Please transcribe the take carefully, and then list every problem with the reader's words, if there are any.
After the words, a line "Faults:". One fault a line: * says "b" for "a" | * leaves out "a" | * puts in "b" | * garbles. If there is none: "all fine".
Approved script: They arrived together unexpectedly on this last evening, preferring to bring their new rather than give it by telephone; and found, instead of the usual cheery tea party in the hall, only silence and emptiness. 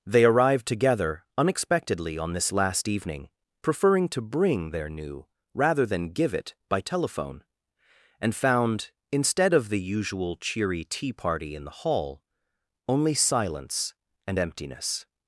They arrived together unexpectedly on this last evening, preferring to bring their new rather than give it by telephone; and found, instead of the usual cheery tea party in the hall, only silence and emptiness.
Faults:
all fine